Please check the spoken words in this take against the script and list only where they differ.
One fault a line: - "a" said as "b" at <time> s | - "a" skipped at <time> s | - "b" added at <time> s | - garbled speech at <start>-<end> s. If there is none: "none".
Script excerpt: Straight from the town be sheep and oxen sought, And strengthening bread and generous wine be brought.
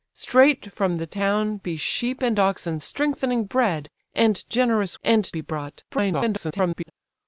- "sought And" skipped at 2.8 s
- "wine" said as "and" at 5.0 s
- garbled speech at 5.9-6.9 s